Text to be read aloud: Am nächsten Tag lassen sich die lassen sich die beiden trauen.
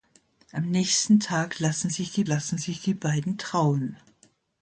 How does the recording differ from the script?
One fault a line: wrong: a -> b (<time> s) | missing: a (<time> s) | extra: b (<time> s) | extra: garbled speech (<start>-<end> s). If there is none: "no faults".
no faults